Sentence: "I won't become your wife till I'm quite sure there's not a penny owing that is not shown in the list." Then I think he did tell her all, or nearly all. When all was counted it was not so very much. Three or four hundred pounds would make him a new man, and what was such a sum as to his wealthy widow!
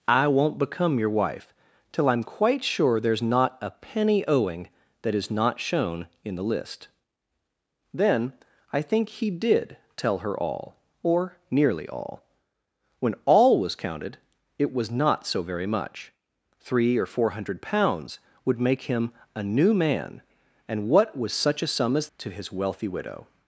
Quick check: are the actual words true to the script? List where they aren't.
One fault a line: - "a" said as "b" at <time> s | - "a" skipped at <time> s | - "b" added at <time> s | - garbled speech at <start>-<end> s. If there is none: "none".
none